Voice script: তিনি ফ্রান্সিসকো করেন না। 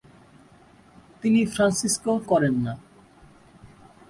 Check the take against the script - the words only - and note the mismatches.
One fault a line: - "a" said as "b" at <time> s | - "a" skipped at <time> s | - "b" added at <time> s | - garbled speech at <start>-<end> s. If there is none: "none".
none